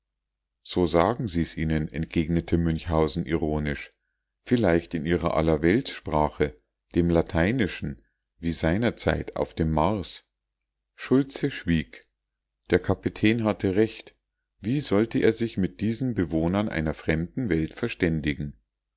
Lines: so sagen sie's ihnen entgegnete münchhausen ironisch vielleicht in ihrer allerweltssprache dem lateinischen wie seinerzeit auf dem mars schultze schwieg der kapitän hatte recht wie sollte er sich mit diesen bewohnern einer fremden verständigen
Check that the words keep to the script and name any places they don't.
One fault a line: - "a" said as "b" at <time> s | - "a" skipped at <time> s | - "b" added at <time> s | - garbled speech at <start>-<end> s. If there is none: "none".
- "welt" added at 17.5 s